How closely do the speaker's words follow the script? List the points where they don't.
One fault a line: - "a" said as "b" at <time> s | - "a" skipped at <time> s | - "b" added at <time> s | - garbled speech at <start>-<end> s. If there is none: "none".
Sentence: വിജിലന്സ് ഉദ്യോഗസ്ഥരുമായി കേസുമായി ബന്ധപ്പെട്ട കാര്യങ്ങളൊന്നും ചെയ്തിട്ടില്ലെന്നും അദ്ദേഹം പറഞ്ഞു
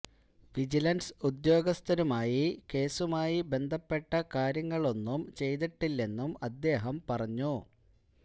none